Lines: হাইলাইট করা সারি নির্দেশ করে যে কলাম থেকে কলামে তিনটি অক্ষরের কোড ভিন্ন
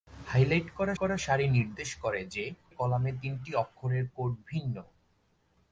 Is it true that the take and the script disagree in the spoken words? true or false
true